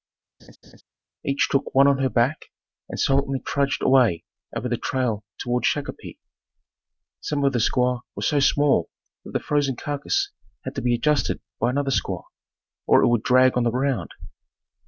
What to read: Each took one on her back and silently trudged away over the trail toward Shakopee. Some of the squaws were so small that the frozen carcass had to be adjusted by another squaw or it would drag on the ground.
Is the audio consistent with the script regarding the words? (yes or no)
yes